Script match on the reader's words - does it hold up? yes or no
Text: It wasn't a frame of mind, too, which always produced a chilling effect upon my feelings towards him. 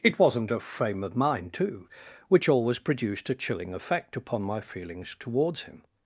yes